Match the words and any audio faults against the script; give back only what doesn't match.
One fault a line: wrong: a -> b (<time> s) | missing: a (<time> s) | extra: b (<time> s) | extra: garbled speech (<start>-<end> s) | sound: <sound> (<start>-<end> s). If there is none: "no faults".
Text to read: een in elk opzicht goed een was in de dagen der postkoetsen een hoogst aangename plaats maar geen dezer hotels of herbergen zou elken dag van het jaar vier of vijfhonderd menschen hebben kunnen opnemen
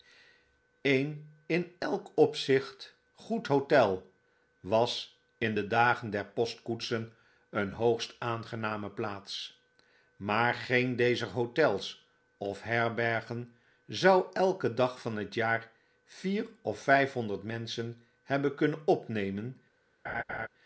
wrong: een -> hotel (3.5 s)
sound: laugh (20.0-20.5 s)